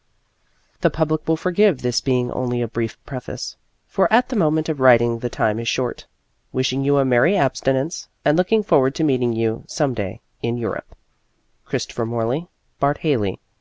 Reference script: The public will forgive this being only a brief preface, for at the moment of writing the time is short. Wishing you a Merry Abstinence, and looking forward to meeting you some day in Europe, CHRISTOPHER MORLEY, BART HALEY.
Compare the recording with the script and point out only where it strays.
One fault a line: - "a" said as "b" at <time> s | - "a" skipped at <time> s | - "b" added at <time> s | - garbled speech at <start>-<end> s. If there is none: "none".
none